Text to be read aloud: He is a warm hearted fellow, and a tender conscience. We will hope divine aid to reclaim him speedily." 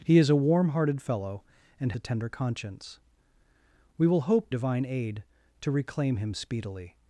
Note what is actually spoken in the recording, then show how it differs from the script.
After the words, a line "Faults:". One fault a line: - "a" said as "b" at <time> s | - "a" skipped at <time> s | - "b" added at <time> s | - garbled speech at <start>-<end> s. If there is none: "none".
He is a warm hearted fellow, and a tender conscience. We will hope divine aid to reclaim him speedily."
Faults:
none